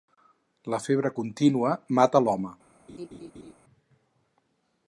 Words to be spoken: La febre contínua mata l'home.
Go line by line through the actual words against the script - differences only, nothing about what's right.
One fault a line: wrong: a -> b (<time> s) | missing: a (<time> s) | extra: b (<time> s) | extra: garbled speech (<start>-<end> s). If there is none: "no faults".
no faults